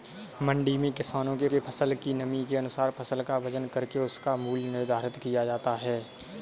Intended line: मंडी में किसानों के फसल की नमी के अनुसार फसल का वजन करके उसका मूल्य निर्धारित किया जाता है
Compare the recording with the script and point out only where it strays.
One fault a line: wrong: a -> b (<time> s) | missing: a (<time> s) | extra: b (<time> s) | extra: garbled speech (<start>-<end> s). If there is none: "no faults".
extra: के (1.5 s)